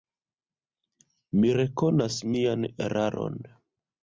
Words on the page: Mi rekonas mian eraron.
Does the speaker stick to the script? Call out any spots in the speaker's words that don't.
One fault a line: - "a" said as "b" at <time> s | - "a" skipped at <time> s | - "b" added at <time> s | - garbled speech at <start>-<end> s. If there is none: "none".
none